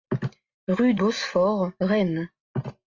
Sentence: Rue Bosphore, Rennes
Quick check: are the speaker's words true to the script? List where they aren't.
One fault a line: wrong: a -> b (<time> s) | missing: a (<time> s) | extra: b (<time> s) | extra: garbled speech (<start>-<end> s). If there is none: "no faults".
no faults